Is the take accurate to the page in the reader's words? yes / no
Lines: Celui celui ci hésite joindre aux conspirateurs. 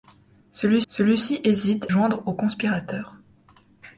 yes